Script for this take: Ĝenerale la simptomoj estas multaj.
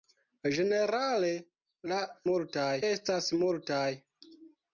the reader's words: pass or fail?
fail